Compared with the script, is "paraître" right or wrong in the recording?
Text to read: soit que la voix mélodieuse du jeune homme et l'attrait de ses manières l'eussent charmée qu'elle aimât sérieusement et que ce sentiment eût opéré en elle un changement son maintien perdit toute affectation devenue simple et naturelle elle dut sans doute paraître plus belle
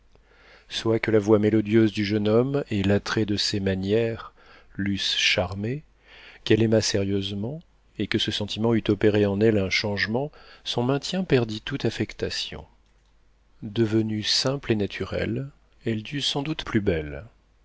wrong